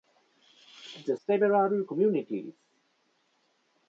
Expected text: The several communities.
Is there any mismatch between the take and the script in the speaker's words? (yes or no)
no